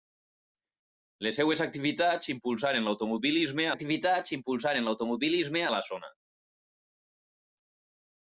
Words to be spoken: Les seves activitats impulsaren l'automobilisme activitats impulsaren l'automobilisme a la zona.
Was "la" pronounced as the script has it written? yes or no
yes